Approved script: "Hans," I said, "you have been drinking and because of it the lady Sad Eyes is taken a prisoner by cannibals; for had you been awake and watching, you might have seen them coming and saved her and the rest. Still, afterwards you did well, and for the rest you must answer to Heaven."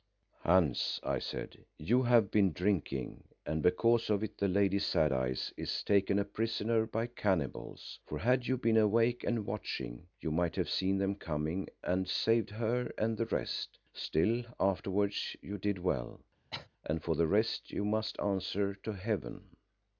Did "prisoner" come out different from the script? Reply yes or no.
no